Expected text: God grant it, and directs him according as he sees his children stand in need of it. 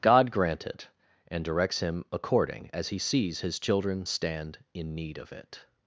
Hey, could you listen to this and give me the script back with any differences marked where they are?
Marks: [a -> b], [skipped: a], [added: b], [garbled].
God grant it, and directs him according as he sees his children stand in need of it.